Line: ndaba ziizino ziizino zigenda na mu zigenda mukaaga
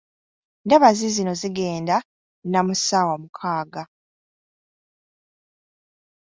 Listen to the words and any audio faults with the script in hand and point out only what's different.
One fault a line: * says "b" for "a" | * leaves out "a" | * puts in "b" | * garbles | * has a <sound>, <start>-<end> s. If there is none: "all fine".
* leaves out "ziizino"
* says "ssaawa" for "zigenda"